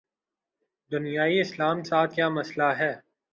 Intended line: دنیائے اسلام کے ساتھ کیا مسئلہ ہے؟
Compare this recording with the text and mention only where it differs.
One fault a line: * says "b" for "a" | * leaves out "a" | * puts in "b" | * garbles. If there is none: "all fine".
* leaves out "کے"